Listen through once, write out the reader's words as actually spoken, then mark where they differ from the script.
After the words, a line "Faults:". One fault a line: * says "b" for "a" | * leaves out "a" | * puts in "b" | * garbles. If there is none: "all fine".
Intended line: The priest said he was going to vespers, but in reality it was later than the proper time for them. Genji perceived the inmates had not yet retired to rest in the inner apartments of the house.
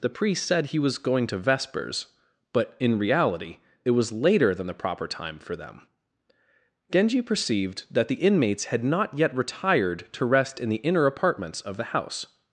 The priest said he was going to vespers, but in reality it was later than the proper time for them. Genji perceived that the inmates had not yet retired to rest in the inner apartments of the house.
Faults:
* puts in "that"